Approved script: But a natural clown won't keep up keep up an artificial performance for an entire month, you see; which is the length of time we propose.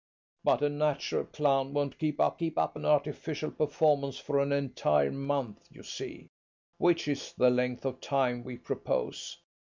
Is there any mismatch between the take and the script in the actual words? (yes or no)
no